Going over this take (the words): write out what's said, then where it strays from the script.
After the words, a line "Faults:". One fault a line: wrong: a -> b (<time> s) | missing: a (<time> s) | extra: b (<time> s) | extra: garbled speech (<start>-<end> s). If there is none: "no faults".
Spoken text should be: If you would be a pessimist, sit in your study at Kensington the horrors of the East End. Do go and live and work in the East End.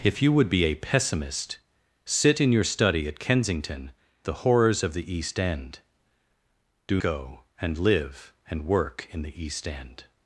If you would be a pessimist, sit in your study at Kensington the horrors of the East End. Do go and live and work in the East End.
Faults:
no faults